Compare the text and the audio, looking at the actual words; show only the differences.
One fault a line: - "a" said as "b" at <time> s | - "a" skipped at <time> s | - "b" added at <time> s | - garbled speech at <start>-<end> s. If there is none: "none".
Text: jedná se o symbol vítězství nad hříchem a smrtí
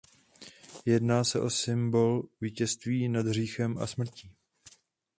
none